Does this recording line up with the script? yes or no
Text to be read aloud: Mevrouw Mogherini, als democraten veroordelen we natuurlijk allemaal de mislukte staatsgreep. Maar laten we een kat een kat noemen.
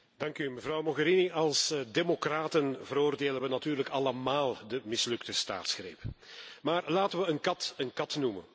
yes